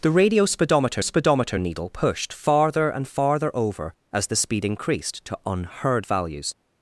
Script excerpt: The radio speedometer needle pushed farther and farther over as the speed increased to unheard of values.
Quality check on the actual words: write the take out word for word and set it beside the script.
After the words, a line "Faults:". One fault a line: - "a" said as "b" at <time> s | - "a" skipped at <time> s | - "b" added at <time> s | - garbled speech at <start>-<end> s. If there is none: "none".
The radio speedometer speedometer needle pushed farther and farther over as the speed increased to unheard values.
Faults:
- "speedometer" added at 1.0 s
- "of" skipped at 6.1 s